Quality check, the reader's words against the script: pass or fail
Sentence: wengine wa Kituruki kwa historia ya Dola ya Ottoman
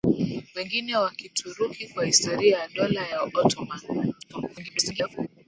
fail